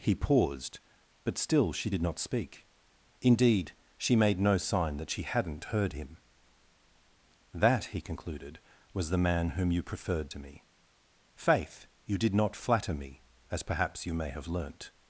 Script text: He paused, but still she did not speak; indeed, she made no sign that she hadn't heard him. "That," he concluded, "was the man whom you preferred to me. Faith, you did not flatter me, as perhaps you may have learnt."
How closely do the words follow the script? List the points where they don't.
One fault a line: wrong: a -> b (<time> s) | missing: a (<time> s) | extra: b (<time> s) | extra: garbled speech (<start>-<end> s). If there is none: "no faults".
no faults